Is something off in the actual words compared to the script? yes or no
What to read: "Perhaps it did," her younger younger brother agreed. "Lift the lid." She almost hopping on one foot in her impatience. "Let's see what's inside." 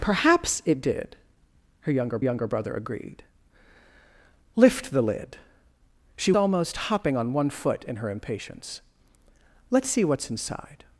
no